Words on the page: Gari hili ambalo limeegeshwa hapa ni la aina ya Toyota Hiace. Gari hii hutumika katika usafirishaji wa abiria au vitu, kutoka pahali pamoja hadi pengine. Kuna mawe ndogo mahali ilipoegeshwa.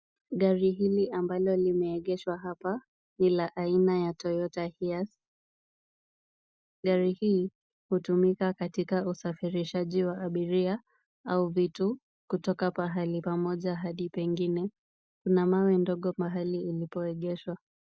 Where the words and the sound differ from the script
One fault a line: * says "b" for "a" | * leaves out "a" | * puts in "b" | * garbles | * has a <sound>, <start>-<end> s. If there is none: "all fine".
all fine